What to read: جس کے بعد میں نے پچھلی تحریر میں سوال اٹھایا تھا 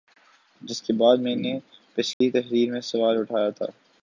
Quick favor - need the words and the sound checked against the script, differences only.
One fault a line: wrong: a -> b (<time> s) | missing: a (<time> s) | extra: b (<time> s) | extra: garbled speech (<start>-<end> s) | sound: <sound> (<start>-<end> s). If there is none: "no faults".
sound: dropout (2.1-2.2 s)